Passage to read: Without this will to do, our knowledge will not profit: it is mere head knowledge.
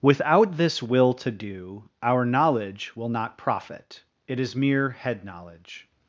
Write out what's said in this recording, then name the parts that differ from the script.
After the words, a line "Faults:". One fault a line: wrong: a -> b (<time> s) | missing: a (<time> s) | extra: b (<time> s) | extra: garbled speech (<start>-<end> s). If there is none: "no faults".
Without this will to do, our knowledge will not profit: it is mere head knowledge.
Faults:
no faults